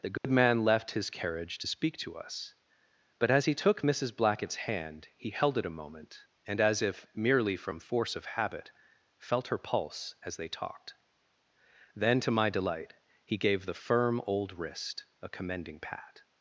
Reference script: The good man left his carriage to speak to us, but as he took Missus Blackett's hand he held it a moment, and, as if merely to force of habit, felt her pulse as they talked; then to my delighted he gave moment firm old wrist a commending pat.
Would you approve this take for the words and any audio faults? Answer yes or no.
no